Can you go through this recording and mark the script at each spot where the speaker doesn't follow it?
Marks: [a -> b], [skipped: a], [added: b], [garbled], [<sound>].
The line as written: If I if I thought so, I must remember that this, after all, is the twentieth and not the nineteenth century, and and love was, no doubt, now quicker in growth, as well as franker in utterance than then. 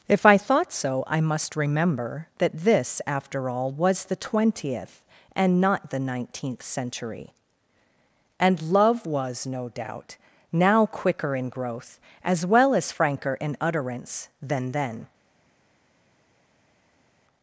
If I [skipped: if I] thought so, I must remember that this, after all, [is -> was] the twentieth and not the nineteenth century, and [skipped: and] love was, no doubt, now quicker in growth, as well as franker in utterance than then.